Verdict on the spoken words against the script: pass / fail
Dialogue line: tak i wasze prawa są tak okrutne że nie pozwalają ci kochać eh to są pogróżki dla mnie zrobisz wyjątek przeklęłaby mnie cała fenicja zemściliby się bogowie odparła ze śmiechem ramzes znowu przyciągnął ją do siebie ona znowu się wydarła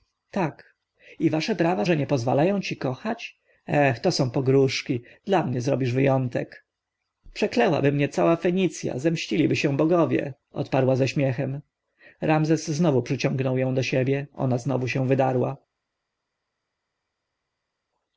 fail